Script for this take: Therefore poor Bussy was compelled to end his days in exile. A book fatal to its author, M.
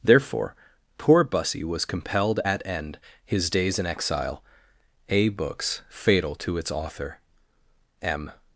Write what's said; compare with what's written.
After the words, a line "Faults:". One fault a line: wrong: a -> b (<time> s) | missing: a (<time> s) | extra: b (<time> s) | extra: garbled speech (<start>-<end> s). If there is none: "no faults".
Therefore poor Bussy was compelled at end his days in exile. A books fatal to its author, M.
Faults:
wrong: to -> at (2.4 s)
wrong: book -> books (5.3 s)